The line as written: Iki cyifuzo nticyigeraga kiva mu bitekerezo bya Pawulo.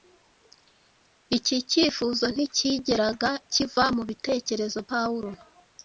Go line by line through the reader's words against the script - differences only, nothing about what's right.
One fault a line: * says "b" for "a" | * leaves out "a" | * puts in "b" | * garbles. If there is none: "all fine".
* leaves out "bya"